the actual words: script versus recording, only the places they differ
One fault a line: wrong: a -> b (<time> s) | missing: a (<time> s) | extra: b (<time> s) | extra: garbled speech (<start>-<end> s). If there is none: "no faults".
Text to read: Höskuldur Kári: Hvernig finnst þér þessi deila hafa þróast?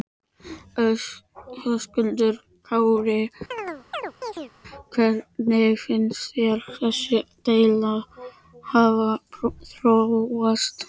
no faults